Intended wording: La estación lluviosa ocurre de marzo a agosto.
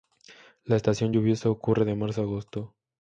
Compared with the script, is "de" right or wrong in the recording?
right